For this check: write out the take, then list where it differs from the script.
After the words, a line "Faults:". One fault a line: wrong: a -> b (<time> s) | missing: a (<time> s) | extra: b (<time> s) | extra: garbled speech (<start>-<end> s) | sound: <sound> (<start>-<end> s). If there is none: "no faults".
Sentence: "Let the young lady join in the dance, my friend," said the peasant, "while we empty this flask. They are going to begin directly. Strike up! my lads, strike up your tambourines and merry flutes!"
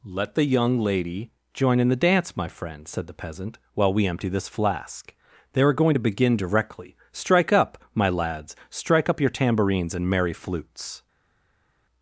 "Let the young lady join in the dance, my friend," said the peasant, "while we empty this flask. They are going to begin directly. Strike up! my lads, strike up your tambourines and merry flutes!"
Faults:
no faults